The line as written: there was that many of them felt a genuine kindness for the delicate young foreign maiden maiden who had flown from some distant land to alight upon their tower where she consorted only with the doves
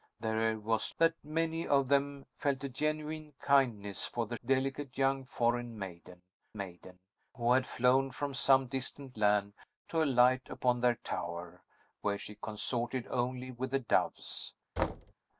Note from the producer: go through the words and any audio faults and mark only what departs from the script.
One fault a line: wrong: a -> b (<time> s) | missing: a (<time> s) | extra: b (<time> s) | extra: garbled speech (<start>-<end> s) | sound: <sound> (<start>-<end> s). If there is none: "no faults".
sound: thud (14.8-15.1 s)